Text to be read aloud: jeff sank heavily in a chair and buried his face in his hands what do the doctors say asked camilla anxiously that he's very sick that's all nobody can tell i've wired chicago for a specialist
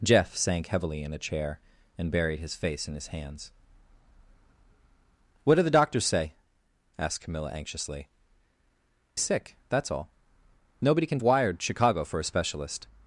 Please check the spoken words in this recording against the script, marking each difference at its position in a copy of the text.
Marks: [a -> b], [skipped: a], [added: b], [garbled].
jeff sank heavily in a chair and buried his face in his hands what do the doctors say asked camilla anxiously [skipped: that he's very] sick that's all nobody can [skipped: tell i've] wired chicago for a specialist